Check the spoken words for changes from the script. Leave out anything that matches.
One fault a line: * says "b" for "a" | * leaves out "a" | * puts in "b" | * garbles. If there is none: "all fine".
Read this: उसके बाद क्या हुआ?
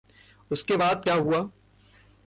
all fine